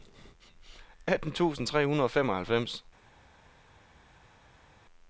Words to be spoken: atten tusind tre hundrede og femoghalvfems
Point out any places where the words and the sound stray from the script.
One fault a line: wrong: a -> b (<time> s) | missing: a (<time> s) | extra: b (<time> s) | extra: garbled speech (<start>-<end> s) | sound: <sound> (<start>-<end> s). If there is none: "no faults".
no faults